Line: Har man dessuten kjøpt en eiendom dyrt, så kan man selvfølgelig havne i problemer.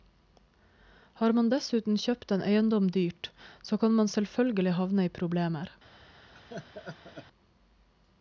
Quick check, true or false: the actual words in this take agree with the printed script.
true